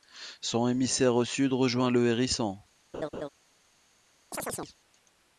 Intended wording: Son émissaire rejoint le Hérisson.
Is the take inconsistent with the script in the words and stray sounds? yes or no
yes